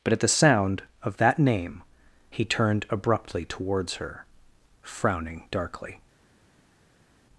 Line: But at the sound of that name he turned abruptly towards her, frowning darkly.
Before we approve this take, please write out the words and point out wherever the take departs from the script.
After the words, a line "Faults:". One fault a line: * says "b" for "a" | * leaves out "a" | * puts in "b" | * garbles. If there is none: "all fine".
But at the sound of that name he turned abruptly towards her, frowning darkly.
Faults:
all fine